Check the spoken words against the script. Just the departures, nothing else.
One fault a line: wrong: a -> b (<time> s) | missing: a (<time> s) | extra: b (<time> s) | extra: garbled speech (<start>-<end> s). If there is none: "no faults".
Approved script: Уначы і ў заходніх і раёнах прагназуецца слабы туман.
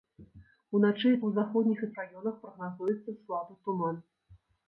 no faults